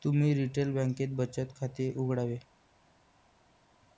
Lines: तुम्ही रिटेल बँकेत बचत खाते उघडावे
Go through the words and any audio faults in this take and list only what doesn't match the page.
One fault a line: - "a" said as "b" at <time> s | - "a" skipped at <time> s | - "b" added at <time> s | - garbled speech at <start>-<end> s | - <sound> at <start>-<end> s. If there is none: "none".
none